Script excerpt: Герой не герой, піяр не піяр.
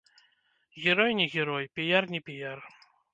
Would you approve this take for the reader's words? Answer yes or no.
yes